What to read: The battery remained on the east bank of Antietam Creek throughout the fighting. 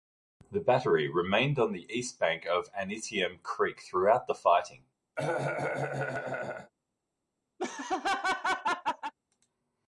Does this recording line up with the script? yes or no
yes